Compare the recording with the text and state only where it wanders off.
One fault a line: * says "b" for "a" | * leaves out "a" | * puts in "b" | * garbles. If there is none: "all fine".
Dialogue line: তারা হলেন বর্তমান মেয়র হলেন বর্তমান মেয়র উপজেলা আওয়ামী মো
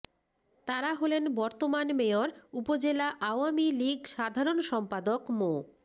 * says "উপজেলা আওয়ামী লীগ সাধারণ সম্পাদক" for "হলেন বর্তমান মেয়র উপজেলা আওয়ামী"